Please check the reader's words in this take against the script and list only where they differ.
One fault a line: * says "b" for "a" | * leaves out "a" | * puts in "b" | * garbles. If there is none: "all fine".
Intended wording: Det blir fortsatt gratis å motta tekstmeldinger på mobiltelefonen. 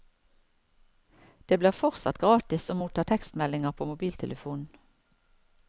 all fine